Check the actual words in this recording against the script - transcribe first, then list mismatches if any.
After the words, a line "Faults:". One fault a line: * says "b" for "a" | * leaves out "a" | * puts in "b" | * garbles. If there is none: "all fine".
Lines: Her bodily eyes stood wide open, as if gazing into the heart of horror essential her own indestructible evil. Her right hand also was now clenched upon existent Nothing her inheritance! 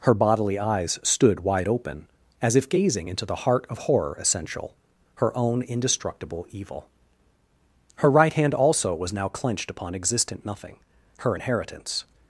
Her bodily eyes stood wide open, as if gazing into the heart of horror essential her own indestructible evil. Her right hand also was now clenched upon existent Nothing her inheritance!
Faults:
all fine